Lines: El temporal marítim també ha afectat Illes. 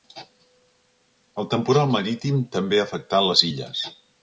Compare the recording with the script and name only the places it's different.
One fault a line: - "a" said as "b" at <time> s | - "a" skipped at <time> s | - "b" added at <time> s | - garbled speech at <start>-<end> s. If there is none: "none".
- "les" added at 3.3 s